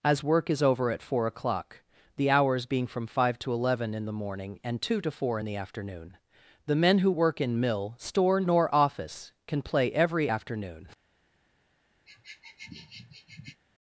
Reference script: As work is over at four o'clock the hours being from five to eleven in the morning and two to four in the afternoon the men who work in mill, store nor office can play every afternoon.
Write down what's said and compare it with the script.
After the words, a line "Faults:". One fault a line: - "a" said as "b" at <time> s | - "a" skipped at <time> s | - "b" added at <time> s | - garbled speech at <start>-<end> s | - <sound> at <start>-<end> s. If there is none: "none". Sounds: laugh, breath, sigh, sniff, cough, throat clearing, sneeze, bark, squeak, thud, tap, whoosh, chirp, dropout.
As work is over at four o'clock the hours being from five to eleven in the morning and two to four in the afternoon the men who work in mill, store nor office can play every afternoon.
Faults:
- sniff at 12.1-13.6 s